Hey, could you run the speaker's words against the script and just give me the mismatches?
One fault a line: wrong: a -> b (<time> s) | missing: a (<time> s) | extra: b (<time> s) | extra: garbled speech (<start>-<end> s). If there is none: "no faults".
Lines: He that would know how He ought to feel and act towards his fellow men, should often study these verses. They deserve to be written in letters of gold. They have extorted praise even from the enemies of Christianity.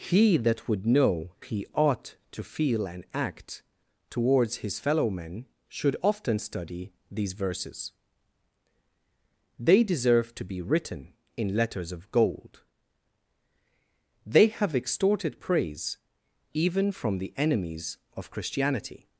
missing: how (1.4 s)